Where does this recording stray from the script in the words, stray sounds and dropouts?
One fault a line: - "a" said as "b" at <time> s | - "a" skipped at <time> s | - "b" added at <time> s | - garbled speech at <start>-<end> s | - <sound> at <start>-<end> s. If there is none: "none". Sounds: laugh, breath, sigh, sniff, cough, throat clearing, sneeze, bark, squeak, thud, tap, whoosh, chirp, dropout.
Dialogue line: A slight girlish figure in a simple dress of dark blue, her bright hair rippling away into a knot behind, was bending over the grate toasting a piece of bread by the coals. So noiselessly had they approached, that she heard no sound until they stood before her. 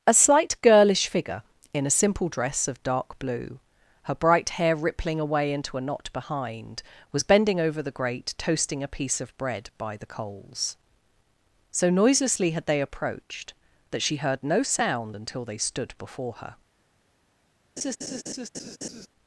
- laugh at 17.8-19.1 s